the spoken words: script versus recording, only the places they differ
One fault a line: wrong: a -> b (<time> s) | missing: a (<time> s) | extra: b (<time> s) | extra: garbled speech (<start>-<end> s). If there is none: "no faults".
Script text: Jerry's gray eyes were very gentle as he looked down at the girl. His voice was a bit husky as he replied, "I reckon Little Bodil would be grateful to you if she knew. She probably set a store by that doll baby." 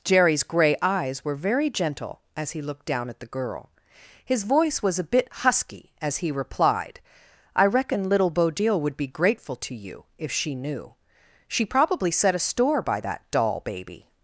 no faults